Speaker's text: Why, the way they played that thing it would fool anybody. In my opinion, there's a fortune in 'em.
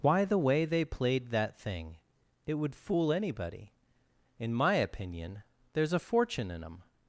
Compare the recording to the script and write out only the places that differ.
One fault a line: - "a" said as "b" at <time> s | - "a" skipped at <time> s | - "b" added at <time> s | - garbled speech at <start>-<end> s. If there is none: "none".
none